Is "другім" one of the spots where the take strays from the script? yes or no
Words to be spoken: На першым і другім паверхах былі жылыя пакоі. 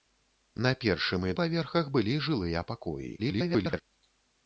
yes